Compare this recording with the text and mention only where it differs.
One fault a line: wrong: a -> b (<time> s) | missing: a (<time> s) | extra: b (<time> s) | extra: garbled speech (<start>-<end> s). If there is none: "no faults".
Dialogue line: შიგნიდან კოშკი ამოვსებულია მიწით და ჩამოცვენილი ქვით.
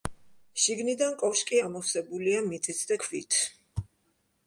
missing: ჩამოცვენილი (3.0 s)